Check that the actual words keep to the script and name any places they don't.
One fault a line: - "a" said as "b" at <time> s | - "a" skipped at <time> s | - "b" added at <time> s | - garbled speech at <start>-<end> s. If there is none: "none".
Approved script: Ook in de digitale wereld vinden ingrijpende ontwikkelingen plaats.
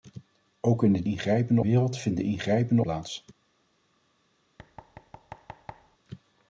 - "digitale" said as "ingrijpende" at 1.0 s
- "ontwikkelingen" skipped at 2.8 s